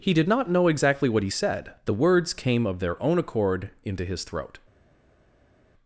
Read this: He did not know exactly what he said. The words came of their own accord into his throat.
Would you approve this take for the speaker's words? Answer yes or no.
yes